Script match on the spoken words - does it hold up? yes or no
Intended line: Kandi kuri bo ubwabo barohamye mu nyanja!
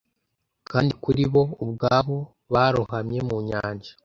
yes